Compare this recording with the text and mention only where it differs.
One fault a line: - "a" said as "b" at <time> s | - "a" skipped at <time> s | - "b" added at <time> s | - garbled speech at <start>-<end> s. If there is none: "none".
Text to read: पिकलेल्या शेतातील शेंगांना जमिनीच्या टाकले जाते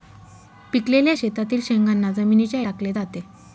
none